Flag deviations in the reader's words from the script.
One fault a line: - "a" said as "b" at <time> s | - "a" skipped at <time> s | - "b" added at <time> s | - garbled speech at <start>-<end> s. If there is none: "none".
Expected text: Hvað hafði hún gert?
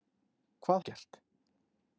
- "hafði hún" skipped at 0.8 s